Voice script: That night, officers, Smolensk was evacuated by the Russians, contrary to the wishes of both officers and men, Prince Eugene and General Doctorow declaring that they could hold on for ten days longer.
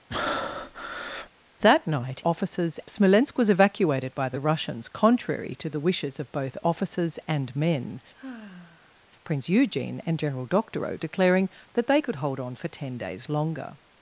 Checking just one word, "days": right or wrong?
right